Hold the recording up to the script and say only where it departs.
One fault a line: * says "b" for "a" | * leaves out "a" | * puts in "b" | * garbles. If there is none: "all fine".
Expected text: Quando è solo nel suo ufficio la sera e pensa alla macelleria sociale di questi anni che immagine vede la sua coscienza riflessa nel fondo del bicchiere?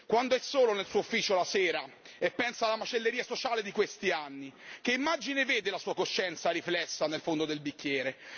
all fine